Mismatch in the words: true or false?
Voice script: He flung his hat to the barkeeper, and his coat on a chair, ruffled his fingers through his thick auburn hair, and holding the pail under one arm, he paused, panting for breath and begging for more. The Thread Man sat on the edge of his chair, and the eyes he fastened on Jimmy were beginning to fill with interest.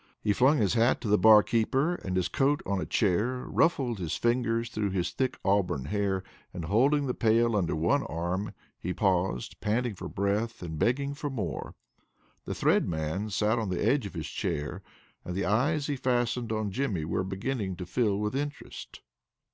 false